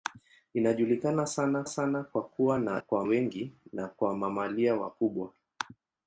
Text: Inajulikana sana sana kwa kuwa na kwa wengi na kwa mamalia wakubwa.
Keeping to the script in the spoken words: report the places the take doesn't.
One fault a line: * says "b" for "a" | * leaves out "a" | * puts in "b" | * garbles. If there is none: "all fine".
all fine